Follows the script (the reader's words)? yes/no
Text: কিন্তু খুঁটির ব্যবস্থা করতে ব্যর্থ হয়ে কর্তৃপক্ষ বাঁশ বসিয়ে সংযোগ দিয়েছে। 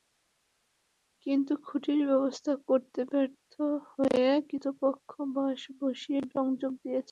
yes